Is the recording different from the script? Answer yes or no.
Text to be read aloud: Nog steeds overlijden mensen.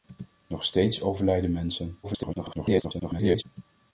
yes